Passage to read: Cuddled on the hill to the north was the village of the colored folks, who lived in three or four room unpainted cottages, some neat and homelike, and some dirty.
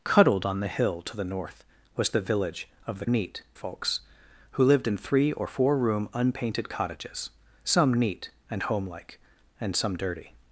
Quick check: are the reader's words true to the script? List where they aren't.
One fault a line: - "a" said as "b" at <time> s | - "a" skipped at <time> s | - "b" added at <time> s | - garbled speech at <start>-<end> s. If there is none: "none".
- "colored" said as "neat" at 3.1 s